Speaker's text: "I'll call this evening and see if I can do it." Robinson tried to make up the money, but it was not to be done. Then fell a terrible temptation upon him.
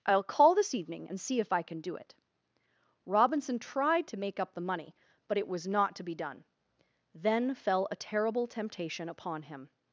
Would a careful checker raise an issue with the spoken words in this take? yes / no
no